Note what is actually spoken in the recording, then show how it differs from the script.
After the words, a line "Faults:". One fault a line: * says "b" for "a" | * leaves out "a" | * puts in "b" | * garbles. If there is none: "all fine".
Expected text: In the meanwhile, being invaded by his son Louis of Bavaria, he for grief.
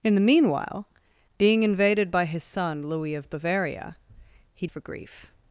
In the meanwhile, being invaded by his son Louis of Bavaria, he for grief.
Faults:
all fine